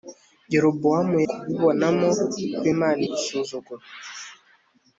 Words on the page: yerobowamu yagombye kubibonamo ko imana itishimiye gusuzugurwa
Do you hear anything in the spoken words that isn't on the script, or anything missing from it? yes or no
yes